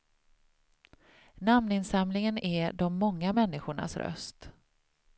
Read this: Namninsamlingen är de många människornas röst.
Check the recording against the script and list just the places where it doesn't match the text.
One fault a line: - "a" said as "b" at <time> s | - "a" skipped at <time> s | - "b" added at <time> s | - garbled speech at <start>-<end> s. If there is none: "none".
none